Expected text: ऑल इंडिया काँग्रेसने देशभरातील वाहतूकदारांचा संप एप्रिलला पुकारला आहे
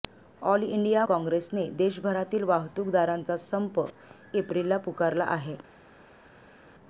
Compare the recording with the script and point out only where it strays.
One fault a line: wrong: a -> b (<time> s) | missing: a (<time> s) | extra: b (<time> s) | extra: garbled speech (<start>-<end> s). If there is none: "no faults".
no faults